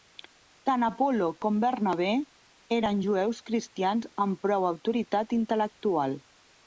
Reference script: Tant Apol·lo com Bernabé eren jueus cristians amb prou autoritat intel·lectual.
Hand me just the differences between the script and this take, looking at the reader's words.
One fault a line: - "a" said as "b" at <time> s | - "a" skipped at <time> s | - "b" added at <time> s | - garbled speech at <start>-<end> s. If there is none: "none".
none